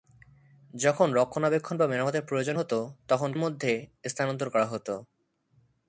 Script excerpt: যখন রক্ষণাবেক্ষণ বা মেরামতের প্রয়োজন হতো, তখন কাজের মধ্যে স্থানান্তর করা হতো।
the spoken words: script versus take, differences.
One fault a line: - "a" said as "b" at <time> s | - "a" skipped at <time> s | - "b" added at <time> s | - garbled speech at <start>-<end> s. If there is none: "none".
- "কাজের" skipped at 3.3 s